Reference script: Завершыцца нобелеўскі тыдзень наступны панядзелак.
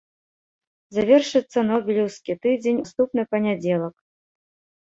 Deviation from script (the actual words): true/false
false